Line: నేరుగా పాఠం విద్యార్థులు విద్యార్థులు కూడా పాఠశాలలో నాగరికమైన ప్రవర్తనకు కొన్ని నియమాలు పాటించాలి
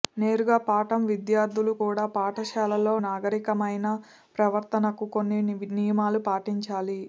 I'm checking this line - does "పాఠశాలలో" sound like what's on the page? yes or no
yes